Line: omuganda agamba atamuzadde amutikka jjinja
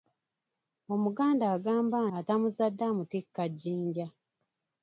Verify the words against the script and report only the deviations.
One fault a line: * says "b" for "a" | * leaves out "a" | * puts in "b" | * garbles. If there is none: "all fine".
all fine